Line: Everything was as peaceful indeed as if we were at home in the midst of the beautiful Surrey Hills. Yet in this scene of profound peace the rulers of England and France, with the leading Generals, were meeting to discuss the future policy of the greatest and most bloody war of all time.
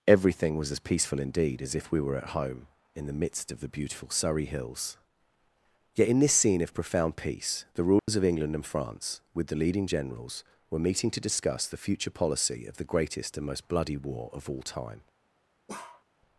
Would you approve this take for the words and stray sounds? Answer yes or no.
no